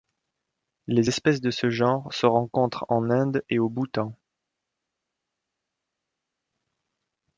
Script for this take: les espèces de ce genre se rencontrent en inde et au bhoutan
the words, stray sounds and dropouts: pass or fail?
pass